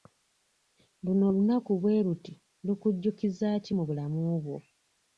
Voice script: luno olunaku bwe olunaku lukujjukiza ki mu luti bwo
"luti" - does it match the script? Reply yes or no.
no